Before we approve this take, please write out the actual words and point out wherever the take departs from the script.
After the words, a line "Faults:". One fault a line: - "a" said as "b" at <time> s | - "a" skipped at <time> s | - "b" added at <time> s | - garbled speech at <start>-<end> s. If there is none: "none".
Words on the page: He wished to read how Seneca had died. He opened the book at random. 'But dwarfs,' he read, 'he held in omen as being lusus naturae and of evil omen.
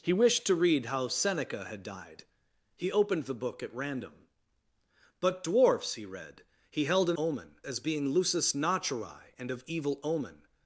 He wished to read how Seneca had died. He opened the book at random. 'But dwarfs,' he read, 'he held in omen as being lusus naturae and of evil omen.
Faults:
none